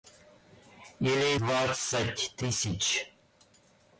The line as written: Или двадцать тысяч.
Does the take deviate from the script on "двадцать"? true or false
false